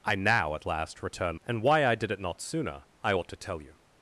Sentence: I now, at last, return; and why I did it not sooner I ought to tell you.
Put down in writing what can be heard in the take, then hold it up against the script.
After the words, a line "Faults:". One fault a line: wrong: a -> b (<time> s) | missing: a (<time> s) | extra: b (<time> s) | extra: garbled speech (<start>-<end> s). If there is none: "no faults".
I now, at last, return; and why I did it not sooner I ought to tell you.
Faults:
no faults